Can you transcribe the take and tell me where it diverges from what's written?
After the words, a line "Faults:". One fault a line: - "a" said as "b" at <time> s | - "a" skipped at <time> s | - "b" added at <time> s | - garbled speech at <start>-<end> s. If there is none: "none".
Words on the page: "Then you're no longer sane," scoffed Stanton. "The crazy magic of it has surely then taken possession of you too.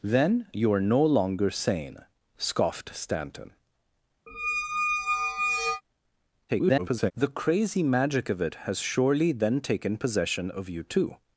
"Then you're no longer sane," scoffed Stanton. [garbled] "The crazy magic of it has surely then taken possession of you too.
Faults:
- garbled speech at 6.5-7.1 s